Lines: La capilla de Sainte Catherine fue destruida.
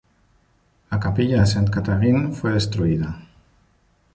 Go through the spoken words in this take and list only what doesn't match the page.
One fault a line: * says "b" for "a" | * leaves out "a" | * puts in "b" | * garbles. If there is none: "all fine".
all fine